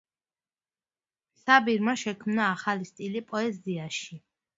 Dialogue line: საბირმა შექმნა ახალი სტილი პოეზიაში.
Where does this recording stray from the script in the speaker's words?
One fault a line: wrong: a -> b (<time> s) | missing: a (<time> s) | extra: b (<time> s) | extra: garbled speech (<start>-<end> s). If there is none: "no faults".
no faults